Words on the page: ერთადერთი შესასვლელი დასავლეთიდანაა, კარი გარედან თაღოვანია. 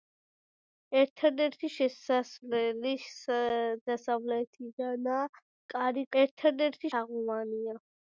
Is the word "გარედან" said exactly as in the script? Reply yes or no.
no